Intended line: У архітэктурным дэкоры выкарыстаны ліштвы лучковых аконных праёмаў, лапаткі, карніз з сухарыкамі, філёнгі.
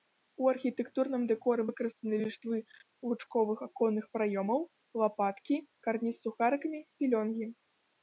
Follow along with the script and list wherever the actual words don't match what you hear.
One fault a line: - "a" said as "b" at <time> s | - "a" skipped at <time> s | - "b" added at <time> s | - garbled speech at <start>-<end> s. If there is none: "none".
none